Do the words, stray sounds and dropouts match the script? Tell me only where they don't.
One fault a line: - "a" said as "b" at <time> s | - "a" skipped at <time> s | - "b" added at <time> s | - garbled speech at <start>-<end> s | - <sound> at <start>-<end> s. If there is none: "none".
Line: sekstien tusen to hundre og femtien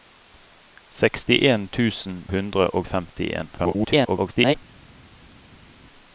- "to" skipped at 2.2 s
- garbled speech at 3.6-4.5 s